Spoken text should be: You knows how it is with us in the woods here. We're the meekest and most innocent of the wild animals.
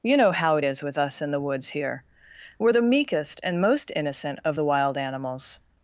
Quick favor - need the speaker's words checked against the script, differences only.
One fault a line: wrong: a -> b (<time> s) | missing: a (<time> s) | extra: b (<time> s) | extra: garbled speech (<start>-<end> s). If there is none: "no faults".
wrong: knows -> know (0.2 s)